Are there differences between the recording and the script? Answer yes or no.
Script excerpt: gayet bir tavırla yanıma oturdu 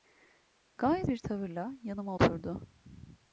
no